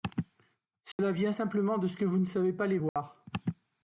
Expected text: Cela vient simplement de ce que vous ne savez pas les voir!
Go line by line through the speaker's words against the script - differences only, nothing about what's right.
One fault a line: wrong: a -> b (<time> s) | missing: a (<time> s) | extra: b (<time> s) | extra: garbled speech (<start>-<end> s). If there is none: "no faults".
no faults